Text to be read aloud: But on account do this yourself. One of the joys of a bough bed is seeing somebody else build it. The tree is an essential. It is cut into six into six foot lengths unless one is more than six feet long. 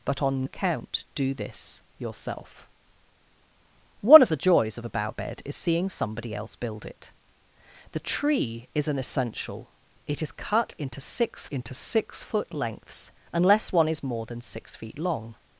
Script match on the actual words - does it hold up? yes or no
yes